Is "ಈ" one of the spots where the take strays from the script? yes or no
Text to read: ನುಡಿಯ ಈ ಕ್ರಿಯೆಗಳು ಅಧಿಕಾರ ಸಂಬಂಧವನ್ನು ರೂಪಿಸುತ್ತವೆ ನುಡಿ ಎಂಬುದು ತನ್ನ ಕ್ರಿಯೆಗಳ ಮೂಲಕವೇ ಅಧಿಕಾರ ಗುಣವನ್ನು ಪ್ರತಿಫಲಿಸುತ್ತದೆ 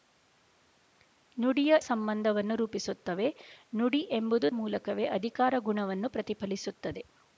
yes